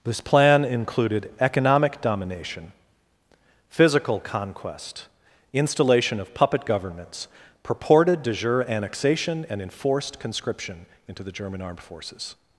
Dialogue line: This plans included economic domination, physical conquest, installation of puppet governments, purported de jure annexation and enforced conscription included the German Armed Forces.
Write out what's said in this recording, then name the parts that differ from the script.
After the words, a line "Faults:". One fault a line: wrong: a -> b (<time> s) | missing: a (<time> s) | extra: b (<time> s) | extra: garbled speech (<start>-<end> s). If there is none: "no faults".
This plan included economic domination, physical conquest, installation of puppet governments, purported de jure annexation and enforced conscription into the German Armed Forces.
Faults:
wrong: plans -> plan (0.2 s)
wrong: included -> into (11.1 s)